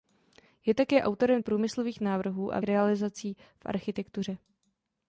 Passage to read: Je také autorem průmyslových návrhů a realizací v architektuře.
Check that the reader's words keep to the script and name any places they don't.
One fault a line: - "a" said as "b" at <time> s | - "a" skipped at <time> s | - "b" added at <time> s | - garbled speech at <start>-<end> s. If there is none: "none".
none